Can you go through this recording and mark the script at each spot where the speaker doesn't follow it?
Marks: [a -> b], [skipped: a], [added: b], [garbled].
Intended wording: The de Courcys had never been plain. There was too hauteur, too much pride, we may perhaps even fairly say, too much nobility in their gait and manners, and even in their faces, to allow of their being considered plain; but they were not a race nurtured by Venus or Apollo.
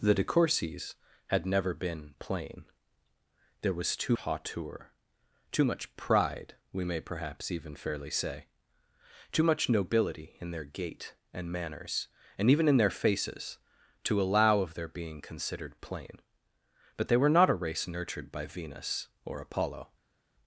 The de Courcys had never been plain. There was too hauteur, too much pride, we may perhaps even fairly say, too much nobility in their gait and manners, and even in their faces, to allow of their being considered plain; but they were not a race nurtured by Venus or Apollo.